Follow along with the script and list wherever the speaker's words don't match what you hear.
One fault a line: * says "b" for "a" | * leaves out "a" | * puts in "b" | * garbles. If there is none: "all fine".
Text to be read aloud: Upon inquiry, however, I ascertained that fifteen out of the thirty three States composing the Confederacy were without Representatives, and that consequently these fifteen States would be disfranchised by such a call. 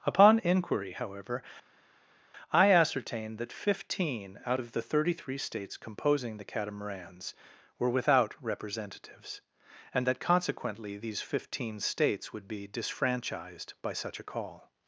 * says "Catamarans" for "Confederacy"